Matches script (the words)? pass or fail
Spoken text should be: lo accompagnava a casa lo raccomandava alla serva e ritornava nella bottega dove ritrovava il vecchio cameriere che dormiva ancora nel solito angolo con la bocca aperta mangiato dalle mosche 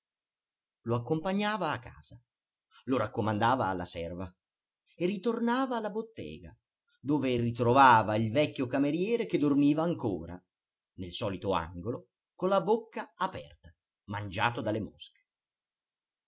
fail